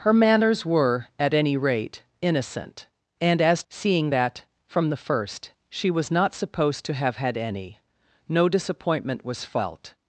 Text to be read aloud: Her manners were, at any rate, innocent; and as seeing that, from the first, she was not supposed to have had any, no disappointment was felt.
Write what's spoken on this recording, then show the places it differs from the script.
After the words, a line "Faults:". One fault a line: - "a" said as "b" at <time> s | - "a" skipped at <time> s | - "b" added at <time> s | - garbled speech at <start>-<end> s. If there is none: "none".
Her manners were, at any rate, innocent; and as seeing that, from the first, she was not supposed to have had any, no disappointment was felt.
Faults:
none